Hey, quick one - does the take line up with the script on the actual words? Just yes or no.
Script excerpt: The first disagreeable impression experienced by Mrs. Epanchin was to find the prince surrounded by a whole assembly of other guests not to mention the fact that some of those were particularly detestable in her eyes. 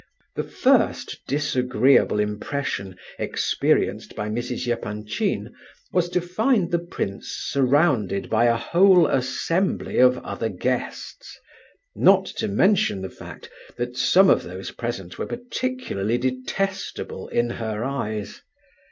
no